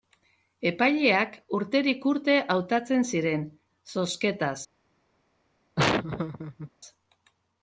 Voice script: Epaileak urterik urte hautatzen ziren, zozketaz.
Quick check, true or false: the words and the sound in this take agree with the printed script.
false